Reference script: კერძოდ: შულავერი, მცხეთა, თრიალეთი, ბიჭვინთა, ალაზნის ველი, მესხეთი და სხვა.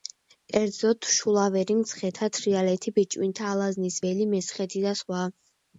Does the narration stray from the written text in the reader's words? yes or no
no